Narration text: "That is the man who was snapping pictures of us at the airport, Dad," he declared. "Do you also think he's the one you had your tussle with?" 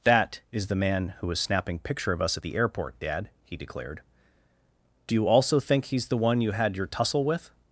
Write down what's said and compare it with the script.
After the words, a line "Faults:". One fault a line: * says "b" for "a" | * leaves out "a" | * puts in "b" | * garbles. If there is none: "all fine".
"That is the man who was snapping picture of us at the airport, Dad," he declared. "Do you also think he's the one you had your tussle with?"
Faults:
* says "picture" for "pictures"